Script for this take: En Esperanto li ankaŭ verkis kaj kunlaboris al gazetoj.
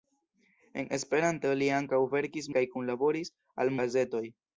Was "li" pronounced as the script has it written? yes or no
yes